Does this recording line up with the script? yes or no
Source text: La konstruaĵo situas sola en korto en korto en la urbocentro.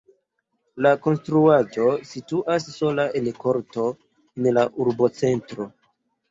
no